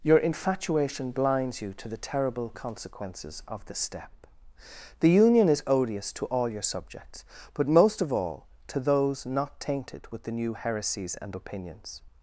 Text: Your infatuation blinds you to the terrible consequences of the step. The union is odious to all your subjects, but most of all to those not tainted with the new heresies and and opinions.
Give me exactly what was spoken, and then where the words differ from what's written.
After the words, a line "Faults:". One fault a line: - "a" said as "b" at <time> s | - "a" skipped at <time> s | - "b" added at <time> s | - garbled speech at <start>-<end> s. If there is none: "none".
Your infatuation blinds you to the terrible consequences of the step. The union is odious to all your subjects, but most of all to those not tainted with the new heresies and opinions.
Faults:
- "and" skipped at 11.3 s